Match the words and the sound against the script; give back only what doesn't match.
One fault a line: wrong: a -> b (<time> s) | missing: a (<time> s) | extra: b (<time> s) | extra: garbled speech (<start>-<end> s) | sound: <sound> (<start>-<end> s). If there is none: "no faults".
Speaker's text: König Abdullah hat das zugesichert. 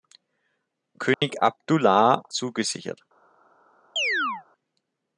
sound: dropout (1.1-1.2 s)
missing: hat das (2.2 s)
sound: chirp (4.0-4.4 s)